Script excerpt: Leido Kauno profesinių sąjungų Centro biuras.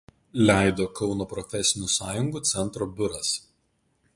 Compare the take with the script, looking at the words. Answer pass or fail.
pass